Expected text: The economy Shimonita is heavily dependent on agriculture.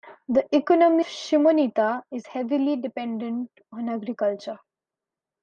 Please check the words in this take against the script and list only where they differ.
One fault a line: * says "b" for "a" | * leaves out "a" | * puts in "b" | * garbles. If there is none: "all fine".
all fine